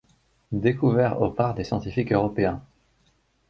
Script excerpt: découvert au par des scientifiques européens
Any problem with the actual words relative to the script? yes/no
no